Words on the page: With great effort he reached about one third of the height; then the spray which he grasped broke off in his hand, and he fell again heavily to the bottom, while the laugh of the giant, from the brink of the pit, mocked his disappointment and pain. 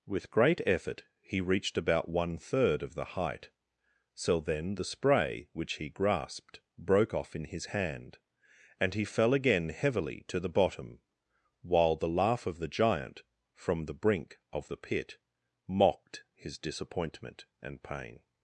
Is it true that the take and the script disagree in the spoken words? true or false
true